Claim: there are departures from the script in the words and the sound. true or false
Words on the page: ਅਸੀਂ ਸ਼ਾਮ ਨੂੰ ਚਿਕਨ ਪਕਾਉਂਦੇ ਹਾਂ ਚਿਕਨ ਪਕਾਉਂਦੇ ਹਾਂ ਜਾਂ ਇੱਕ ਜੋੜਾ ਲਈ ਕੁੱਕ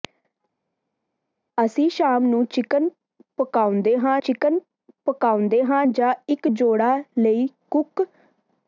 false